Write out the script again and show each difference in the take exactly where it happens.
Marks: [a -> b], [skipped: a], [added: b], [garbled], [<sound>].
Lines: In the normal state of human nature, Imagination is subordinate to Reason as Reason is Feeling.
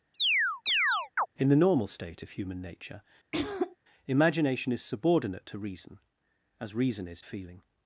[chirp] In the normal state of human nature, [throat clearing] Imagination is subordinate to Reason as Reason is Feeling.